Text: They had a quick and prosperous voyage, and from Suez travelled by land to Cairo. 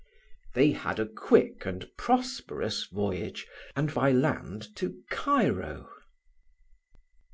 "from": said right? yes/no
no